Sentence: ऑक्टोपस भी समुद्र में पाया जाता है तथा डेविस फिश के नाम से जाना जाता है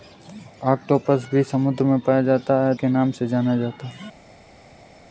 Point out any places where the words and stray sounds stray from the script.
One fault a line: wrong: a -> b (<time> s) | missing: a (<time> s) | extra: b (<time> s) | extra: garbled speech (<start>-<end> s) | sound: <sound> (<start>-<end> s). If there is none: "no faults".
missing: तथा डेविस फिश (2.7 s)